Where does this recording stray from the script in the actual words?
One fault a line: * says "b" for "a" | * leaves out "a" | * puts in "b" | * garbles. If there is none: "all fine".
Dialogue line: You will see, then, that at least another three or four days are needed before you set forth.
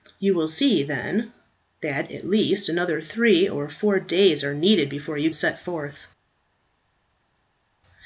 all fine